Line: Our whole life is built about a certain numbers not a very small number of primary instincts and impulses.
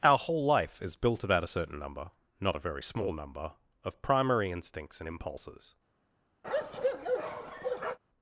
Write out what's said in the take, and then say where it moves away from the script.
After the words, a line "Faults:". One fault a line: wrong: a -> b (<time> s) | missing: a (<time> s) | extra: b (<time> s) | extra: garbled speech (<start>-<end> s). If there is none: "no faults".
Our whole life is built about a certain number not a very small number of primary instincts and impulses.
Faults:
wrong: numbers -> number (1.8 s)